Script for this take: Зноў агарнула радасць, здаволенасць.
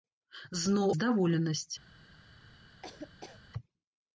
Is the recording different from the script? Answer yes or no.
yes